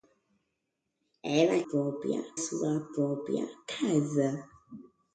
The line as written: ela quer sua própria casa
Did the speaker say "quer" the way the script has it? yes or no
no